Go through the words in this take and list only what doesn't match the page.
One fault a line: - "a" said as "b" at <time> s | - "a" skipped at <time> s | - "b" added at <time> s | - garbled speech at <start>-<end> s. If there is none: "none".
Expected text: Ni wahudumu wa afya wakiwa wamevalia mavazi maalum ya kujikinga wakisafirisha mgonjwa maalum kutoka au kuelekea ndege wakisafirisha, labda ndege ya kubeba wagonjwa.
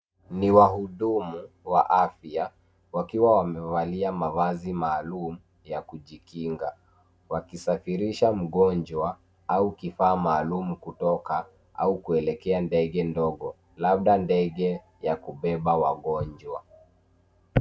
- "au kifaa" added at 9.5 s
- "wakisafirisha" said as "ndogo" at 13.0 s